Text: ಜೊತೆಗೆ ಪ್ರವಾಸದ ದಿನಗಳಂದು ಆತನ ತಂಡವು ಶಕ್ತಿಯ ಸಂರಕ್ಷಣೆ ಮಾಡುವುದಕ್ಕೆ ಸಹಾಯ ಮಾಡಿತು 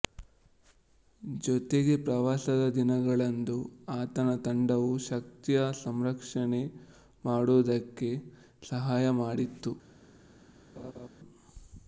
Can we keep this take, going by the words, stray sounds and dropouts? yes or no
no